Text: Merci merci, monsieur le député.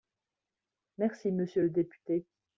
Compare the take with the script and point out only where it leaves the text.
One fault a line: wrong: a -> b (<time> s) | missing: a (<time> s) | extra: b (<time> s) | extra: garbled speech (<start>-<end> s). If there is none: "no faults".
missing: merci (1.3 s)